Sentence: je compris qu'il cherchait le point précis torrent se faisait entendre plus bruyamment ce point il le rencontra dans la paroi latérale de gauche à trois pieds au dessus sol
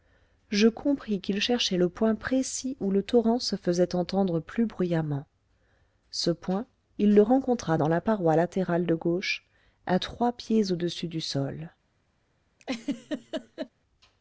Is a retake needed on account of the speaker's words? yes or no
yes